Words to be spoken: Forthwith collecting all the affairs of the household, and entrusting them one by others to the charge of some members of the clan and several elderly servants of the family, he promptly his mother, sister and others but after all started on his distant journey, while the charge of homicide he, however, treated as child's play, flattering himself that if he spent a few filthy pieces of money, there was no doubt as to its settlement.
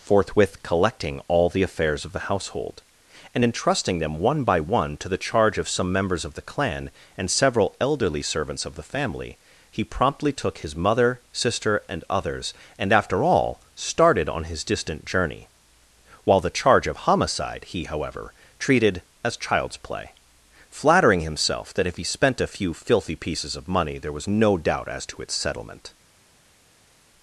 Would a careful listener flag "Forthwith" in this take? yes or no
no